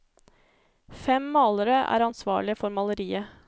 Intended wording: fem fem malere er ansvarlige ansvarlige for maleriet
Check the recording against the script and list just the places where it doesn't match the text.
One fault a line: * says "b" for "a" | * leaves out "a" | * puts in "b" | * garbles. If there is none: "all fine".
* leaves out "fem"
* leaves out "ansvarlige"